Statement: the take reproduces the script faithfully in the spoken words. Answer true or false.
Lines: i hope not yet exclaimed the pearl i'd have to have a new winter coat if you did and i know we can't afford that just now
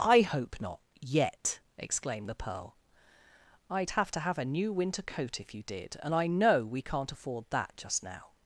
true